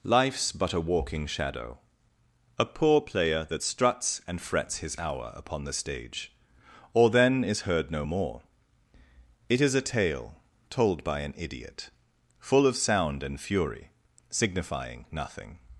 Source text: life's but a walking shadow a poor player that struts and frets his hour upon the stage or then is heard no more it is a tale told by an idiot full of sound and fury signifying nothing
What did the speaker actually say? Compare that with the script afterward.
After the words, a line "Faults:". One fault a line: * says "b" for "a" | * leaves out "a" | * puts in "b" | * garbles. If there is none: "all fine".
life's but a walking shadow a poor player that struts and frets his hour upon the stage or then is heard no more it is a tale told by an idiot full of sound and fury signifying nothing
Faults:
all fine